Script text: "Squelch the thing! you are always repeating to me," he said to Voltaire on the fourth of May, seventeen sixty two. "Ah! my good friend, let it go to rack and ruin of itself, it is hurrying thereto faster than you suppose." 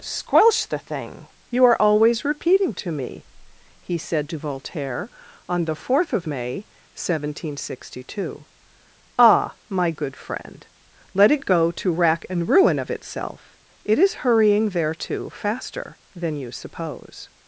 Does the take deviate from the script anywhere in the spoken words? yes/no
no